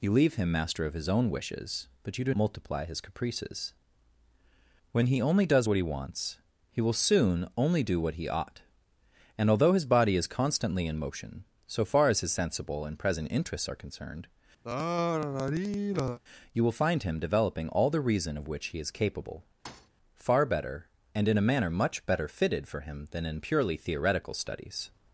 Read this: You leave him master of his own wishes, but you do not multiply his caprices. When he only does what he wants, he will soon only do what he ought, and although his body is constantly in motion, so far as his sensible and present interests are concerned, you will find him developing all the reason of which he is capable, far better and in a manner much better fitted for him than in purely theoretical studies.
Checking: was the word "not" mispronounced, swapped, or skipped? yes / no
yes